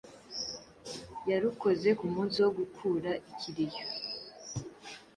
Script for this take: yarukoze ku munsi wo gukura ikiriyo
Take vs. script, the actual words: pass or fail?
pass